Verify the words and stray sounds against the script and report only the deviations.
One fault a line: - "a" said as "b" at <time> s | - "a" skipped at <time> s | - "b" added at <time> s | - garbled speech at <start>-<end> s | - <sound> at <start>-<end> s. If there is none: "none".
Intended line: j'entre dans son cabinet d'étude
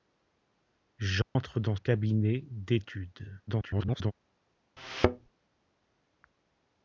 - dropout at 1.2-1.4 s
- "son" skipped at 1.8 s
- garbled speech at 3.5-4.1 s
- thud at 4.8-5.3 s